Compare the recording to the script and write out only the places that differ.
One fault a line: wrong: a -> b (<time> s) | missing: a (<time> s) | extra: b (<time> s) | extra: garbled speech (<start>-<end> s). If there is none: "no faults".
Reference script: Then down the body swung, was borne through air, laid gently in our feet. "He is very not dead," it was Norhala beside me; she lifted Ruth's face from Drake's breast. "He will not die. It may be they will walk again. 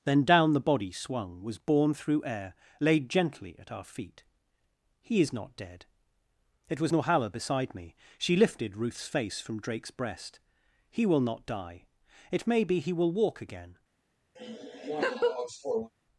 wrong: in -> at (3.6 s)
missing: very (5.3 s)
wrong: they -> he (12.8 s)